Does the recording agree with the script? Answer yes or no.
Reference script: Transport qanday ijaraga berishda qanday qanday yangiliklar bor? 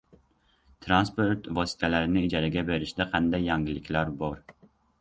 no